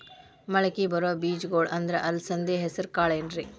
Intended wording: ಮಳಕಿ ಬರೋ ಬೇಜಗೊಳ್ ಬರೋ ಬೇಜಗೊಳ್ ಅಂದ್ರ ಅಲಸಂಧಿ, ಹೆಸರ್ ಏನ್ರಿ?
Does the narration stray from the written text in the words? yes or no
yes